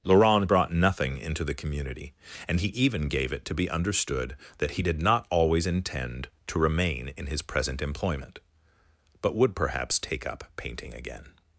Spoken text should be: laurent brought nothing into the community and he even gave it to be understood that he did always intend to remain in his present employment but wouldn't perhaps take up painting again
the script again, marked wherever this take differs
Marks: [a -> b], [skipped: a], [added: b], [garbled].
laurent brought nothing into the community and he even gave it to be understood that he did [added: not] always intend to remain in his present employment but [wouldn't -> would] perhaps take up painting again